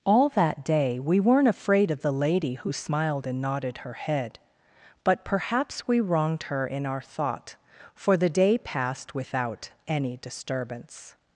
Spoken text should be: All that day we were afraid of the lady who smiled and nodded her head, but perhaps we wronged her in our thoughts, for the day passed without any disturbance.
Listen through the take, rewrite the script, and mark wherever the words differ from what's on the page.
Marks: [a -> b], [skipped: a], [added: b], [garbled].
All that day we [were -> weren't] afraid of the lady who smiled and nodded her head, but perhaps we wronged her in our [thoughts, -> thought] for the day passed without any disturbance.